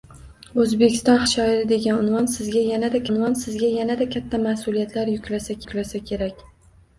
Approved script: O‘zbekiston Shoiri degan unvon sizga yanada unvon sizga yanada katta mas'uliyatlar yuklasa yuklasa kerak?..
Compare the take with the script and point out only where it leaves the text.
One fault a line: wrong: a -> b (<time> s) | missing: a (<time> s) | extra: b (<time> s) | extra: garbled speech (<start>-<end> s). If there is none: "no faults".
no faults